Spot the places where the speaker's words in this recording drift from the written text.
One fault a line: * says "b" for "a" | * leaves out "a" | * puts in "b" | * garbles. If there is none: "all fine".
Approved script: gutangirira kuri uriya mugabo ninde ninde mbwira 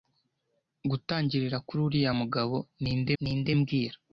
all fine